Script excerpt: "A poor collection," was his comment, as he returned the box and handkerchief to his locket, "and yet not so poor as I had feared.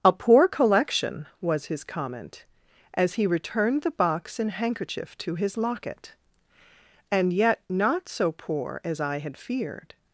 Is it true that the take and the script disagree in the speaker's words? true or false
false